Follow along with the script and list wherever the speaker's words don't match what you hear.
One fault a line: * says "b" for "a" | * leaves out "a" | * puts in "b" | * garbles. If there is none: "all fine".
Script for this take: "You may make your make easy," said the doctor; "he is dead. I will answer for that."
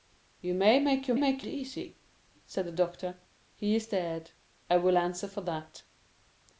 all fine